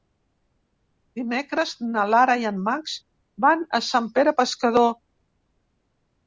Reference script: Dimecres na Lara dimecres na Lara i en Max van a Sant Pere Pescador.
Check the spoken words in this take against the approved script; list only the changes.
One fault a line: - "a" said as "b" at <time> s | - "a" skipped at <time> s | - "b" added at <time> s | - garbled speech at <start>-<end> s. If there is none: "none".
- "dimecres na Lara" skipped at 2.4 s